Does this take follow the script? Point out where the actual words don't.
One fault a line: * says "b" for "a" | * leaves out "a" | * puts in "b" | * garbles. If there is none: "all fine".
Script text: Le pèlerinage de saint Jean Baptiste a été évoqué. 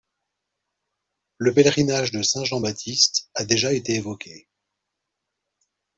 * puts in "déjà"